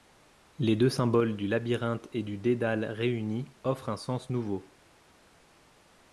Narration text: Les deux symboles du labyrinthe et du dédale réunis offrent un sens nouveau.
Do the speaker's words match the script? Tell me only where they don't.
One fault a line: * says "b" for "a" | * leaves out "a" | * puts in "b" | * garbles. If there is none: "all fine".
all fine